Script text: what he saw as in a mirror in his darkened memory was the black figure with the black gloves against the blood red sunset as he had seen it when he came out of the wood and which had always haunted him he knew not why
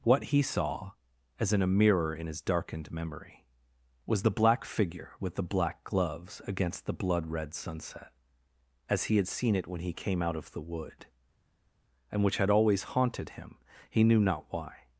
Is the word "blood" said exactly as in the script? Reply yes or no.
yes